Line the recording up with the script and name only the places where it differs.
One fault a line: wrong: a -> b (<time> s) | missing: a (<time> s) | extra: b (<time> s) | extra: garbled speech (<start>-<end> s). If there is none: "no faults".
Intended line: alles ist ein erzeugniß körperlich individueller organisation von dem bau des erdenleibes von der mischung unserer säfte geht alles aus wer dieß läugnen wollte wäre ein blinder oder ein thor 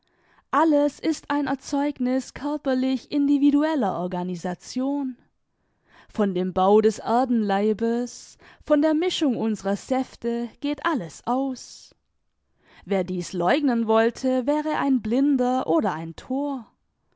no faults